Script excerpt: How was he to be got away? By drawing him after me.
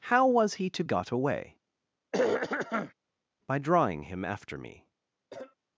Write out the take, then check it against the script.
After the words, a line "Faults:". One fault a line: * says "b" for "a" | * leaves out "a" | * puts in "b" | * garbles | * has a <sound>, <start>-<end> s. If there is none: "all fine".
How was he to got away? By drawing him after me.
Faults:
* leaves out "be"
* has a throat clearing, 2.1-2.9 s
* has a cough, 5.3-5.6 s